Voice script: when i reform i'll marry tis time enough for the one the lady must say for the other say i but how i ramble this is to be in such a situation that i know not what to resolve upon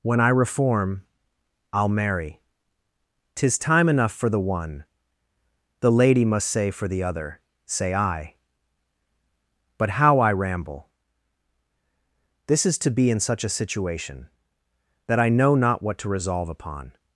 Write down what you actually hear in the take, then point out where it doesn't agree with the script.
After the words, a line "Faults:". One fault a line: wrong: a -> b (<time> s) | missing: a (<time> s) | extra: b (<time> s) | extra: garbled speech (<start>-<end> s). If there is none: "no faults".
when i reform i'll marry tis time enough for the one the lady must say for the other say i but how i ramble this is to be in such a situation that i know not what to resolve upon
Faults:
no faults